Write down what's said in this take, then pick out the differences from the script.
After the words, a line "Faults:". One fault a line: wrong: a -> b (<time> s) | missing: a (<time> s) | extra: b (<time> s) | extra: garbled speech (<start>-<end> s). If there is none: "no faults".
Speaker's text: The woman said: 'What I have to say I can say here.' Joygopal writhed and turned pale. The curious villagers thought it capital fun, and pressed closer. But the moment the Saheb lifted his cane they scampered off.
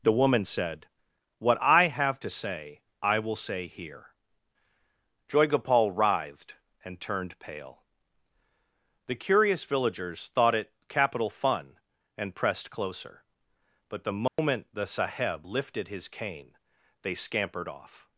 The woman said: 'What I have to say I will say here.' Joygopal writhed and turned pale. The curious villagers thought it capital fun, and pressed closer. But the moment the Saheb lifted his cane they scampered off.
Faults:
wrong: can -> will (3.2 s)